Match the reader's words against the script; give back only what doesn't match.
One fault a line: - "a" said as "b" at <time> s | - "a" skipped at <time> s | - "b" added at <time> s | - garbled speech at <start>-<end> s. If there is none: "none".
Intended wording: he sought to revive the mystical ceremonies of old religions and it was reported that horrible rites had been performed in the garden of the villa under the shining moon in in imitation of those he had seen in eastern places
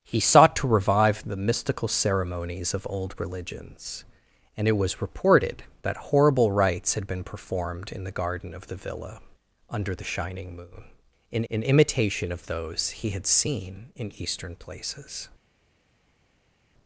none